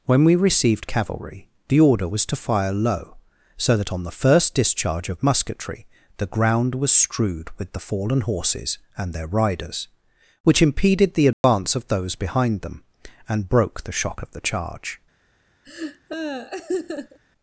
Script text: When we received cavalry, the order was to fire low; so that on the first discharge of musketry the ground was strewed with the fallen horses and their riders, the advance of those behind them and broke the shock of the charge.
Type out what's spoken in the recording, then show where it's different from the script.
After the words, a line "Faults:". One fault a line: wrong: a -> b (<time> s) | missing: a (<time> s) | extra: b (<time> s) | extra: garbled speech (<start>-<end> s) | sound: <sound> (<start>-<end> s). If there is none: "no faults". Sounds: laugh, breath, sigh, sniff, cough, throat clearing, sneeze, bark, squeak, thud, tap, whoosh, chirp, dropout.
When we received cavalry, the order was to fire low; so that on the first discharge of musketry the ground was strewed with the fallen horses and their riders, which impeded the advance of those behind them and broke the shock of the charge.
Faults:
extra: which impeded (10.4 s)
sound: dropout (11.3-11.4 s)
sound: laugh (15.6-17.2 s)